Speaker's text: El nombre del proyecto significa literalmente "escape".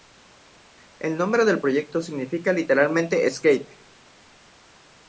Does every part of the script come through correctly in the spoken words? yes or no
yes